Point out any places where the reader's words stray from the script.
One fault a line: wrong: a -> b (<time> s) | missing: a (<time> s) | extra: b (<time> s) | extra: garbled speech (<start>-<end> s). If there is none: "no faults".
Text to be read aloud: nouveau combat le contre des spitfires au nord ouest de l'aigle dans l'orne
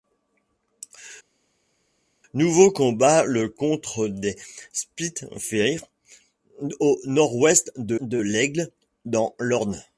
extra: de (8.0 s)